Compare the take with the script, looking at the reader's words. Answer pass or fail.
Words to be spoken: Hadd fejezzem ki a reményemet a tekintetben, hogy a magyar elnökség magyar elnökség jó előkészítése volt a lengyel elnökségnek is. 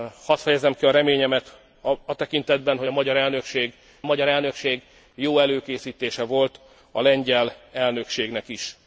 pass